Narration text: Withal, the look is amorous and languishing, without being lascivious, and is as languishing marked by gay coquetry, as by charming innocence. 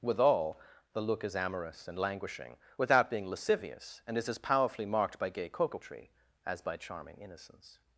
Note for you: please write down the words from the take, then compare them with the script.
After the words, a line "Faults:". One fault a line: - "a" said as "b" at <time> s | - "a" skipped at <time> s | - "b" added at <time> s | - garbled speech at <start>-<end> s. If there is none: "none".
Withal, the look is amorous and languishing, without being lascivious, and is as powerfully marked by gay coquetry, as by charming innocence.
Faults:
- "languishing" said as "powerfully" at 4.4 s